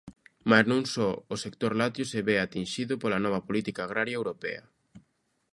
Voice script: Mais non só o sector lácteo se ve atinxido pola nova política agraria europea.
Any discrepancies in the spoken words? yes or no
no